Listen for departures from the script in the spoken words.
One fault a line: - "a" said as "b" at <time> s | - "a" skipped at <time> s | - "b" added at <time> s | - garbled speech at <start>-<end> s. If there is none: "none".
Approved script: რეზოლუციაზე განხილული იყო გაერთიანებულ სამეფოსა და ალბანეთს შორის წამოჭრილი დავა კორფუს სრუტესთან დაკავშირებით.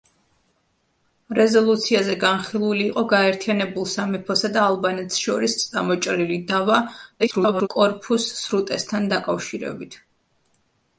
- garbled speech at 7.2-7.7 s